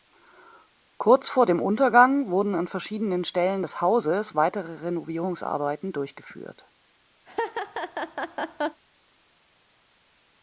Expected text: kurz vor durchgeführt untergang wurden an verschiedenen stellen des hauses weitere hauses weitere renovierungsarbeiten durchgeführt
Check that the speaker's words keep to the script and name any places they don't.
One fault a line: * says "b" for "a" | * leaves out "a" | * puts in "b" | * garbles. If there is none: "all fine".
* says "dem" for "durchgeführt"
* leaves out "hauses weitere"